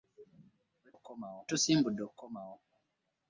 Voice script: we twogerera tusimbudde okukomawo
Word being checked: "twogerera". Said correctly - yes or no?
no